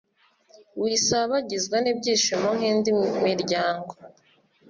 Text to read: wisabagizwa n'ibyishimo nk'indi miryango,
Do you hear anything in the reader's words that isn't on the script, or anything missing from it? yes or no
no